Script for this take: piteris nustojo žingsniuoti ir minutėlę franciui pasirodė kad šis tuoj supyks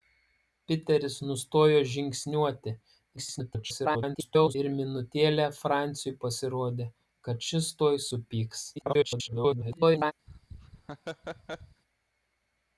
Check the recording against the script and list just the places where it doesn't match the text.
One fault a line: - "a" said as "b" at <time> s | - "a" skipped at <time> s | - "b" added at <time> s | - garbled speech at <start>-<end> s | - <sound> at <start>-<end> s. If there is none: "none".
- garbled speech at 3.2-4.6 s
- garbled speech at 8.8-10.1 s
- laugh at 10.3-11.8 s